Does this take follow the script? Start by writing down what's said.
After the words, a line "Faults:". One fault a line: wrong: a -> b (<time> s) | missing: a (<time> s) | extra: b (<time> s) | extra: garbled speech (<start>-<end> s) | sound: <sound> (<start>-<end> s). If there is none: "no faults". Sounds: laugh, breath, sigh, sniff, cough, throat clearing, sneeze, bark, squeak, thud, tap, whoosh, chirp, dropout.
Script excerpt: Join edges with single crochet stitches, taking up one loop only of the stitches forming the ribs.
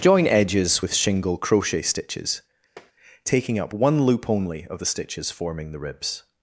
Join edges with shingle crochet stitches, taking up one loop only of the stitches forming the ribs.
Faults:
wrong: single -> shingle (0.9 s)
sound: tap (2.8-2.9 s)